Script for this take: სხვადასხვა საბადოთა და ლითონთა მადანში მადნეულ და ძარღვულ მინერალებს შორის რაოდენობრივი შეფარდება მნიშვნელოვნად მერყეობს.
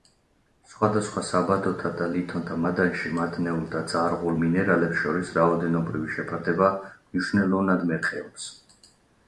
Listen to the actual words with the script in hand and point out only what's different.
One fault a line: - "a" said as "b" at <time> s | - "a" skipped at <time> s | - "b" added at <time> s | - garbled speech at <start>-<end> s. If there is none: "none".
none